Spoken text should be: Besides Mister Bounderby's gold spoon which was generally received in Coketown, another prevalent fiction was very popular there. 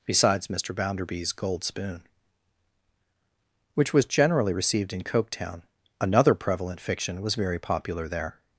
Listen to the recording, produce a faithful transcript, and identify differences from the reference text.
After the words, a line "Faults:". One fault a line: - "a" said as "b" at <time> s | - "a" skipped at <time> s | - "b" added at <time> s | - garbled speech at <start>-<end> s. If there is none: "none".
Besides Mister Bounderby's gold spoon which was generally received in Coketown, another prevalent fiction was very popular there.
Faults:
none